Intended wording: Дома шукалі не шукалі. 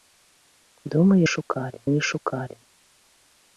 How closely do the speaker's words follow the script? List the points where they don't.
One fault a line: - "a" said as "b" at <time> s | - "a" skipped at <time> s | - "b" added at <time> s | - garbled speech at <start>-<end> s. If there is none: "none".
none